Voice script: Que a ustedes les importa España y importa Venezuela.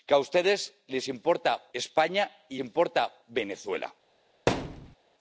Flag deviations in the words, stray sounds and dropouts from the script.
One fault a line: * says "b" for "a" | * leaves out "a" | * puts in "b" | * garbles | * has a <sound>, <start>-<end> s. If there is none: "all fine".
* has a thud, 4.5-5.0 s